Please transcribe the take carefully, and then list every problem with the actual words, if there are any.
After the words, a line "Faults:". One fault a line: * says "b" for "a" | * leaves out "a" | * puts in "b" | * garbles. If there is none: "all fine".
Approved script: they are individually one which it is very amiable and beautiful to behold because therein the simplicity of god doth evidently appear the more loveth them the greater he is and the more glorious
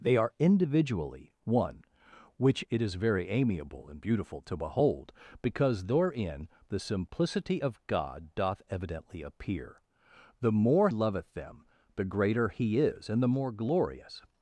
they are individually one which it is very amiable and beautiful to behold because therein the simplicity of god doth evidently appear the more loveth them the greater he is and the more glorious
Faults:
all fine